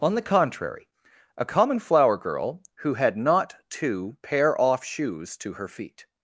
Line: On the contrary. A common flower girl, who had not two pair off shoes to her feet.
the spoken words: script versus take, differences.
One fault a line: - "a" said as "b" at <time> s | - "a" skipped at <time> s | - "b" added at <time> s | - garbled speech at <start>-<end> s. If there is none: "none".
none